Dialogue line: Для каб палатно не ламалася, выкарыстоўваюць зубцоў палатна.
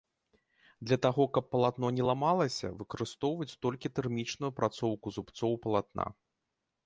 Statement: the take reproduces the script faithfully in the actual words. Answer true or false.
false